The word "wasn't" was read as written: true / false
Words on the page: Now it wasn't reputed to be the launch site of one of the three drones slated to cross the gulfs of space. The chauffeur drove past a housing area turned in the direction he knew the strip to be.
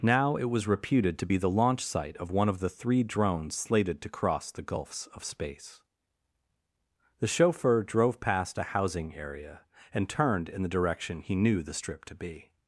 false